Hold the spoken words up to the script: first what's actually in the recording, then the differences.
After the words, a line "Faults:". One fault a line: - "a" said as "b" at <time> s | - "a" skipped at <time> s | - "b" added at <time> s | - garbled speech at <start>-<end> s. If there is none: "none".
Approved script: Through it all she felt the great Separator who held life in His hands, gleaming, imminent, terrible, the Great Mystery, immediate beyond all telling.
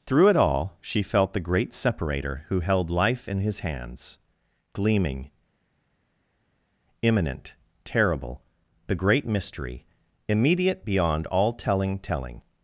Through it all she felt the great Separator who held life in His hands, gleaming, imminent, terrible, the Great Mystery, immediate beyond all telling telling.
Faults:
- "telling" added at 12.0 s